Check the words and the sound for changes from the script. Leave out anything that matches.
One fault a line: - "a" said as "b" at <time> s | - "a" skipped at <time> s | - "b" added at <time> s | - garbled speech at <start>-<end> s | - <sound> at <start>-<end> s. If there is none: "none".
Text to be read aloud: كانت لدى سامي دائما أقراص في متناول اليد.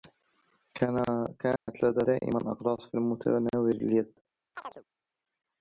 - dropout at 1.6-1.7 s
- "سامي" skipped at 2.0 s
- chirp at 4.6-4.8 s